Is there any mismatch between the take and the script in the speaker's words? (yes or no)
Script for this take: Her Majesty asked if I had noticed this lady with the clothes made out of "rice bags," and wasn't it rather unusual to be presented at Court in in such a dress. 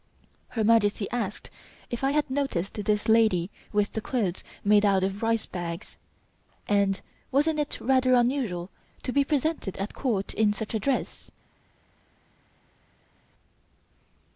yes